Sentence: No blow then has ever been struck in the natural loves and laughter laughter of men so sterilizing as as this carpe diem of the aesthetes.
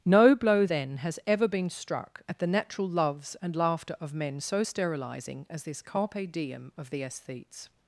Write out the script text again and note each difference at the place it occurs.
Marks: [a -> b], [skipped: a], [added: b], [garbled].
No blow then has ever been struck [in -> at] the natural loves and laughter [skipped: laughter] of men so sterilizing as [skipped: as] this carpe diem of the aesthetes.